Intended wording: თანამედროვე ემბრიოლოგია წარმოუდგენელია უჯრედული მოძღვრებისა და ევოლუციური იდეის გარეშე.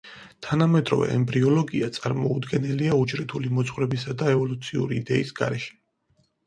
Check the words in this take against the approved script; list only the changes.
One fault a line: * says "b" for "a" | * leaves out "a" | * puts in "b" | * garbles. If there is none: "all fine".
all fine